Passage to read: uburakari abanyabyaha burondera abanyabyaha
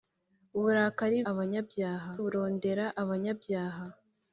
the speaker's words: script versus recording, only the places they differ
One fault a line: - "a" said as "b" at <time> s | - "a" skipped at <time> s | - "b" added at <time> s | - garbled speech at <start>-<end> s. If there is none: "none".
none